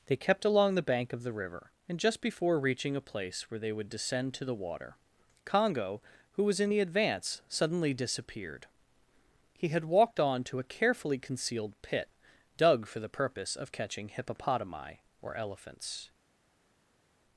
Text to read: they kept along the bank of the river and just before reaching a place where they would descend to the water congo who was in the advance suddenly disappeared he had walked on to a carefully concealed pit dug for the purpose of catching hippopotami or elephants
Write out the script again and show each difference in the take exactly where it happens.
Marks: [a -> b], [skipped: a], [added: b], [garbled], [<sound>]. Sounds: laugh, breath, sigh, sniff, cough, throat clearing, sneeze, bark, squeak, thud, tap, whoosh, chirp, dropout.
they kept along the bank of the river and just before reaching a place where they would descend to the water congo who was in the advance suddenly disappeared he had walked on to a carefully concealed pit dug for the purpose of catching hippopotami or elephants